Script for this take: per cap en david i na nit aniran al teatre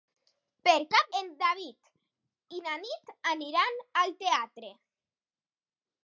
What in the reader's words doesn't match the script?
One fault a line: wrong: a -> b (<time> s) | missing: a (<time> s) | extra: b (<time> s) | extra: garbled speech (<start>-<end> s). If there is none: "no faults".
no faults